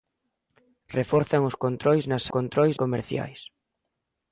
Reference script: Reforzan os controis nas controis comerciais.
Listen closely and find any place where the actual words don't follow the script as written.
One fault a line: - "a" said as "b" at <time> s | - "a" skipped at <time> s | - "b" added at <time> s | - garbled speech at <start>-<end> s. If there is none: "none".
none